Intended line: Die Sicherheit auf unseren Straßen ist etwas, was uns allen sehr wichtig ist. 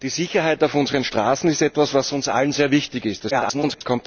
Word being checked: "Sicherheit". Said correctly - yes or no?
yes